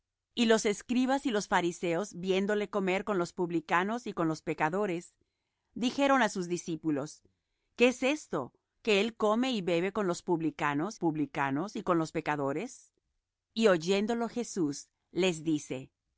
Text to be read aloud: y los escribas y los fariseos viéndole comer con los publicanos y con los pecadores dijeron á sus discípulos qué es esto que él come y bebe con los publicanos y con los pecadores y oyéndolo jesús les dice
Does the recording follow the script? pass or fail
fail